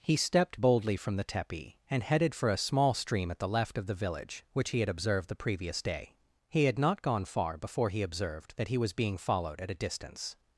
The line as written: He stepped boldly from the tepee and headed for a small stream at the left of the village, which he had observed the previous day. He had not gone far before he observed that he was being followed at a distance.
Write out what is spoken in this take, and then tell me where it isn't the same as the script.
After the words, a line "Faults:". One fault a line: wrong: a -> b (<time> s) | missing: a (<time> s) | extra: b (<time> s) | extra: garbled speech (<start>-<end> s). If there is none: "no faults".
He stepped boldly from the tepee and headed for a small stream at the left of the village, which he had observed the previous day. He had not gone far before he observed that he was being followed at a distance.
Faults:
no faults